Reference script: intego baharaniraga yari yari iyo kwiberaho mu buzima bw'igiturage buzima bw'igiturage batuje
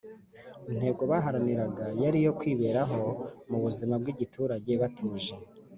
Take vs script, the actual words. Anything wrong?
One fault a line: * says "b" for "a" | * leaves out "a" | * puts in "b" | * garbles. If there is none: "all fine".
* leaves out "yari"
* leaves out "buzima bw'igiturage"